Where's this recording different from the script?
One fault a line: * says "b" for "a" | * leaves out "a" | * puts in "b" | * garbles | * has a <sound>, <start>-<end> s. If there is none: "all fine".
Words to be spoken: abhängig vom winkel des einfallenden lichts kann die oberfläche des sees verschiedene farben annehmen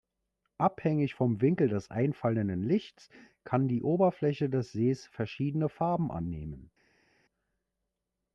all fine